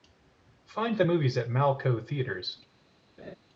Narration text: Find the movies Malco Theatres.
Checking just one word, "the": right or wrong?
right